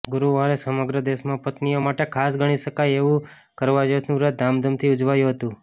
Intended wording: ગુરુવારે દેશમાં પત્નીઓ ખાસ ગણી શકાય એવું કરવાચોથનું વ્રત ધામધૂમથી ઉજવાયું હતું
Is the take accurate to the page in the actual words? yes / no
no